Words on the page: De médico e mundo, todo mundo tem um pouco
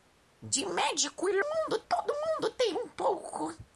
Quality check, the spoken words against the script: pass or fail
pass